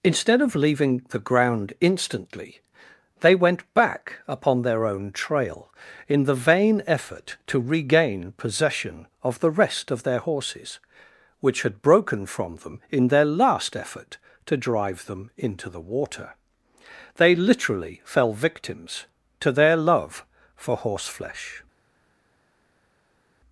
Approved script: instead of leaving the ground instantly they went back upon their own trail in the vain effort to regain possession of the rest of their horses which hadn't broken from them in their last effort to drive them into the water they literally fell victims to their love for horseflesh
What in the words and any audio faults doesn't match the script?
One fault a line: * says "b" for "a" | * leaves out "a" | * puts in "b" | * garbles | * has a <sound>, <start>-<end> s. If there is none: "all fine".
* says "had" for "hadn't"